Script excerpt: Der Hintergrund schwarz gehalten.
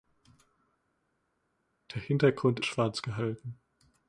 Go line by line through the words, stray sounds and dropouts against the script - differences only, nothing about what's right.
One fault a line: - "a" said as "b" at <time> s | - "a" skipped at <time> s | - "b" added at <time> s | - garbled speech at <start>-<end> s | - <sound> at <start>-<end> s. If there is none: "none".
none